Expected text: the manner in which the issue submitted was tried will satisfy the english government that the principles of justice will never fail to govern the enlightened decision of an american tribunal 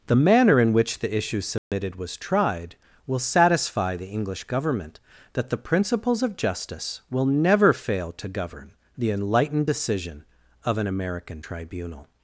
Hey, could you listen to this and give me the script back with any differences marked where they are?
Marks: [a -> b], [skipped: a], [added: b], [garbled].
the manner in which the issue submitted was tried will satisfy the english government that the principles of justice will never fail to govern the enlightened decision of an american tribunal